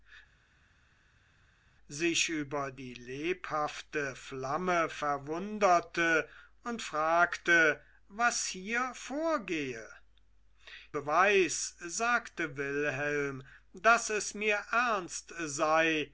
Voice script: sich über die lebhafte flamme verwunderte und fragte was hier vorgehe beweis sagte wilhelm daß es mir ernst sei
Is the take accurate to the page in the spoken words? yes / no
yes